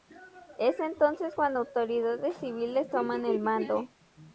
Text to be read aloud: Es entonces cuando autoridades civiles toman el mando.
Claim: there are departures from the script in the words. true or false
false